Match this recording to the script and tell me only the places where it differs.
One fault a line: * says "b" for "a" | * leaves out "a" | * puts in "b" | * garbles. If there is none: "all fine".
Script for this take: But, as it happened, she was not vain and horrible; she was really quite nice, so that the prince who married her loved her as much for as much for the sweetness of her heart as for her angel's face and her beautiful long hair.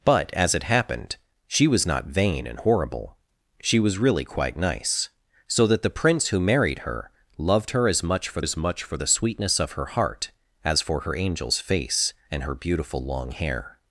all fine